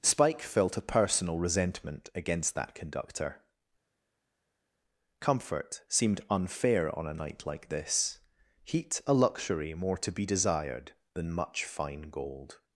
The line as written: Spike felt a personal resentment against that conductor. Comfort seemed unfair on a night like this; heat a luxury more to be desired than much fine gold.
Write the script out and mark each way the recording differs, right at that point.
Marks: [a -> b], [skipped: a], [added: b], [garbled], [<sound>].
Spike felt a personal resentment against that conductor. Comfort seemed unfair on a night like this; heat a luxury more to be desired than much fine gold.